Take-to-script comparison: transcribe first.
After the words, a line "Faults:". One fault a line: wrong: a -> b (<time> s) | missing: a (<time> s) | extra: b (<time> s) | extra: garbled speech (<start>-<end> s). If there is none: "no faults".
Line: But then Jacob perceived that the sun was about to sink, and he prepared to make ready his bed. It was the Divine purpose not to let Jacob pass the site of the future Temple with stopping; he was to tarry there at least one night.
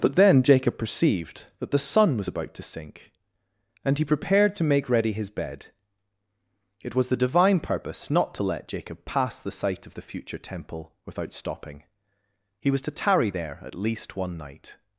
But then Jacob perceived that the sun was about to sink, and he prepared to make ready his bed. It was the Divine purpose not to let Jacob pass the site of the future Temple without stopping; he was to tarry there at least one night.
Faults:
wrong: with -> without (11.0 s)